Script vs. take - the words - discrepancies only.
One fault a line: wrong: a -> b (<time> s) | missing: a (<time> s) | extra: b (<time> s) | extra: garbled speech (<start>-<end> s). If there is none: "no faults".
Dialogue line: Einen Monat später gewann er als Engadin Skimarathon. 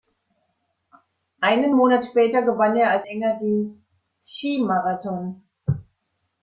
no faults